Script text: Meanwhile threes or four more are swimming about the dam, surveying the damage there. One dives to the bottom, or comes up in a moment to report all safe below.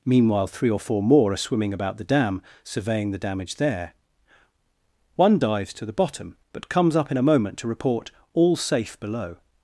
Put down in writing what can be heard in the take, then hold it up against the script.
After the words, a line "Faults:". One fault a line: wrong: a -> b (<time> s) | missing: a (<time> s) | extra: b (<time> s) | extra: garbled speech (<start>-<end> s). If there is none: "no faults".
Meanwhile three or four more are swimming about the dam, surveying the damage there. One dives to the bottom, but comes up in a moment to report all safe below.
Faults:
wrong: threes -> three (0.5 s)
wrong: or -> but (6.5 s)